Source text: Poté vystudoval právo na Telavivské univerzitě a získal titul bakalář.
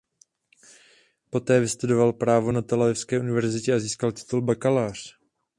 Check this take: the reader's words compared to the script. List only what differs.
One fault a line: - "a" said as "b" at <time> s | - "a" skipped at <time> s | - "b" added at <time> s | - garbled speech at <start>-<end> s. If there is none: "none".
none